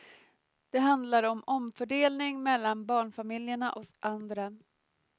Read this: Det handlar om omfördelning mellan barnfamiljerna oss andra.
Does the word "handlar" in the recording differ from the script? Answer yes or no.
no